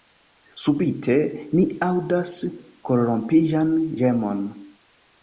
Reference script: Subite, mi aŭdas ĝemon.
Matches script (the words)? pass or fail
fail